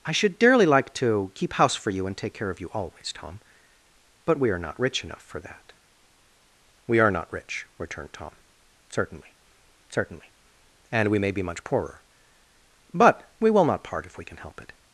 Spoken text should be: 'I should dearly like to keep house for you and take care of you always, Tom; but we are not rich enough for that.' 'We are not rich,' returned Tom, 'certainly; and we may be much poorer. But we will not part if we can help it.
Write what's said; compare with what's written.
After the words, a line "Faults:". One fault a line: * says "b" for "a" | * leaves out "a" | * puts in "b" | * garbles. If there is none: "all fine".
'I should dearly like to keep house for you and take care of you always, Tom; but we are not rich enough for that.' 'We are not rich,' returned Tom, 'certainly certainly; and we may be much poorer. But we will not part if we can help it.
Faults:
* puts in "certainly"